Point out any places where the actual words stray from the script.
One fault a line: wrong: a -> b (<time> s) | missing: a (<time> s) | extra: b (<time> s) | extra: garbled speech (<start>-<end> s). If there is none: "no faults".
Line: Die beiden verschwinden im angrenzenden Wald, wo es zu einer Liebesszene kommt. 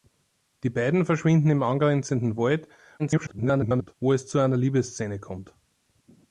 extra: garbled speech (3.0-3.9 s)